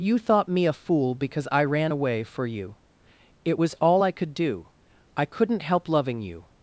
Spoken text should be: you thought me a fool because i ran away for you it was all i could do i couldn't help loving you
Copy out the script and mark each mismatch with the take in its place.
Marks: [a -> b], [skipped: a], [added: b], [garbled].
you thought me a fool because i ran away for you it was all i could do i couldn't help loving you